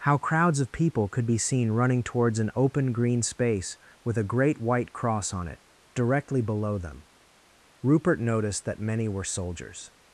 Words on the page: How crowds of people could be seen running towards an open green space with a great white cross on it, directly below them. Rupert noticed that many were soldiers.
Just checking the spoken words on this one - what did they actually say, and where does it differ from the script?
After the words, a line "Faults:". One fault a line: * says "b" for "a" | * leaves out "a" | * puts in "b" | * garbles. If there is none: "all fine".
How crowds of people could be seen running towards an open green space with a great white cross on it, directly below them. Rupert noticed that many were soldiers.
Faults:
all fine